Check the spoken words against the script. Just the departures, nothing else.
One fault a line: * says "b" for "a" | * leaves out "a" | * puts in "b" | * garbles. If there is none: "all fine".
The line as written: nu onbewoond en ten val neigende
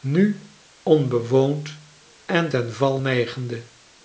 all fine